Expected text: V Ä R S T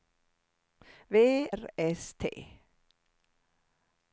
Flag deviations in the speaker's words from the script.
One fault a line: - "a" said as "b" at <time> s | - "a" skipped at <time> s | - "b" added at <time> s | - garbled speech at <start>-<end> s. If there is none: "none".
- "Ä" skipped at 1.1 s